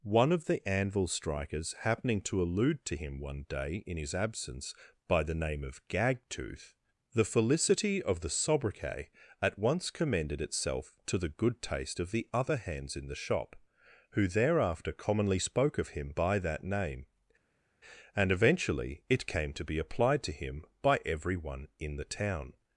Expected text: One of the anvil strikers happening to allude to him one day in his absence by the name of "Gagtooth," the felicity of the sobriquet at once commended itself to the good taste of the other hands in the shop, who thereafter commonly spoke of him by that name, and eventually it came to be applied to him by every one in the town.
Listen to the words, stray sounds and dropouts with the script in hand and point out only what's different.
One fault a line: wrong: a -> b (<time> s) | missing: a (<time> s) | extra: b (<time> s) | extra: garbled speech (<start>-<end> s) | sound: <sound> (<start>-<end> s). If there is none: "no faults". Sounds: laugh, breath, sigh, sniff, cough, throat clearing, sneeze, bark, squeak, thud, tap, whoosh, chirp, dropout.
no faults